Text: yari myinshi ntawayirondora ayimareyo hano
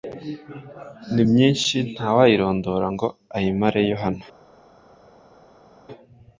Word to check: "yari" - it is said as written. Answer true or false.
false